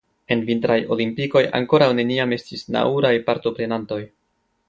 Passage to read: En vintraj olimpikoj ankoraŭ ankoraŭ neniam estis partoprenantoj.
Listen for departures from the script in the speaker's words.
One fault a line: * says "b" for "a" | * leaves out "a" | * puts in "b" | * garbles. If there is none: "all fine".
* leaves out "ankoraŭ"
* puts in "nauraj"